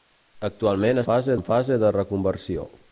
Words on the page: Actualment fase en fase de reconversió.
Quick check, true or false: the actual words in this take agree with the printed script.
true